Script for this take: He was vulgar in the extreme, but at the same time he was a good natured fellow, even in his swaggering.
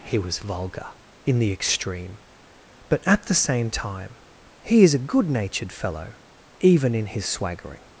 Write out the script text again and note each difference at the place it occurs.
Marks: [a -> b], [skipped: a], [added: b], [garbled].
He was vulgar in the extreme, but at the same time he [was -> is] a good natured fellow, even in his swaggering.